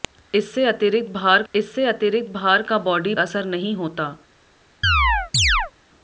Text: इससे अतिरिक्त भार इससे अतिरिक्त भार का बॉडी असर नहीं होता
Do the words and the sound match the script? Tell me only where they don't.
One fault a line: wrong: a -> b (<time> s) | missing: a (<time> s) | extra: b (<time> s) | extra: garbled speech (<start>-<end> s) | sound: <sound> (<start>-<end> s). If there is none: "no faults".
sound: chirp (4.8-5.7 s)